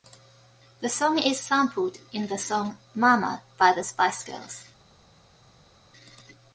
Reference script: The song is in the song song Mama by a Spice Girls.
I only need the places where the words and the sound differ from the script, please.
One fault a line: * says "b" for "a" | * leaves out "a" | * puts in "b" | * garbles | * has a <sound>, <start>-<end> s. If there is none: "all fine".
* puts in "sampled"
* leaves out "song"
* says "the" for "a"